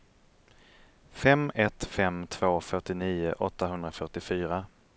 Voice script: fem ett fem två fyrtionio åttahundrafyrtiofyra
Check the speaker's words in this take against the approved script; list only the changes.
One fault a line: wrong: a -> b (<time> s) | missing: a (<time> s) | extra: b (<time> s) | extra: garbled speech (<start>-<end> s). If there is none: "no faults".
no faults